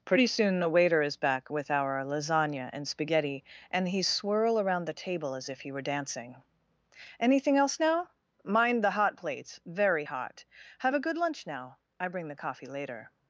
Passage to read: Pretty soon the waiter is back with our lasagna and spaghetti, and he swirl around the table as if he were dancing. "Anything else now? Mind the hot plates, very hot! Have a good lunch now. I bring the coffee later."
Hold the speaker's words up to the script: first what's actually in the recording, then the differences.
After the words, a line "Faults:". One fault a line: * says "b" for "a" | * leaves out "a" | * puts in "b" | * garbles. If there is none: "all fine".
Pretty soon the waiter is back with our lasagna and spaghetti, and he swirl around the table as if he were dancing. "Anything else now? Mind the hot plates, very hot! Have a good lunch now. I bring the coffee later."
Faults:
all fine